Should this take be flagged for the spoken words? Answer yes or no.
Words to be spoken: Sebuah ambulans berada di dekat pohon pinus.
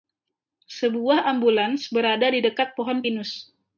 no